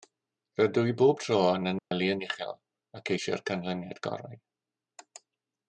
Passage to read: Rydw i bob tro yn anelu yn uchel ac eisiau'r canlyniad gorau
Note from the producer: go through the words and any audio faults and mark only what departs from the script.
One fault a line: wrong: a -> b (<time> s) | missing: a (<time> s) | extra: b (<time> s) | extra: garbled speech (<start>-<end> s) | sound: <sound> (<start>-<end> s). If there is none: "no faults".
sound: dropout (1.8-1.9 s)